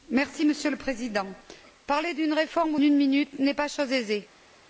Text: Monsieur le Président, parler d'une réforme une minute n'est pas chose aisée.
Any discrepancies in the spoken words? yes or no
no